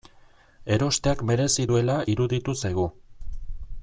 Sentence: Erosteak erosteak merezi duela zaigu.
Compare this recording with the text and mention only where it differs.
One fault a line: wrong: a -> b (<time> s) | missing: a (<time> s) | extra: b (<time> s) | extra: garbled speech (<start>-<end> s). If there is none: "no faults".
missing: erosteak (1.2 s)
extra: iruditu (2.1 s)